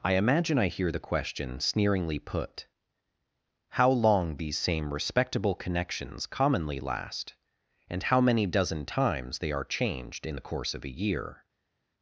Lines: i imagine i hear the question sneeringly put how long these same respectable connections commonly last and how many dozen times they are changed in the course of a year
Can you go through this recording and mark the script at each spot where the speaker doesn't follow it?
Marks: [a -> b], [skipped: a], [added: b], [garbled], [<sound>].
i imagine i hear the question sneeringly put how long these same respectable connections commonly last and how many dozen times they are changed in the course of a year